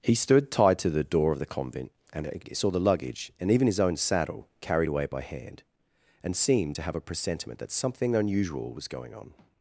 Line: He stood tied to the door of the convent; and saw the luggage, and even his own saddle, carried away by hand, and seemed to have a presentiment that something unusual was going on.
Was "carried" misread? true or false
false